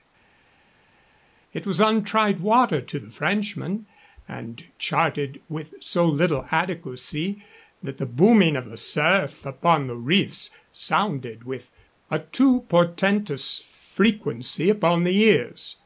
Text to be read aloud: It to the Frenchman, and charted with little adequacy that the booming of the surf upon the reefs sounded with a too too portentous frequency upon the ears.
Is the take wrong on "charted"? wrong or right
right